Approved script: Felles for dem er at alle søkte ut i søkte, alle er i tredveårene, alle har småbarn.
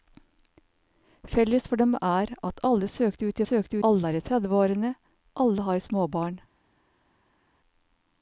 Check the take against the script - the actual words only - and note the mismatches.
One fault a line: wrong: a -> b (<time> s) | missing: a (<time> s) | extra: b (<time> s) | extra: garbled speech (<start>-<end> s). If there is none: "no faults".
no faults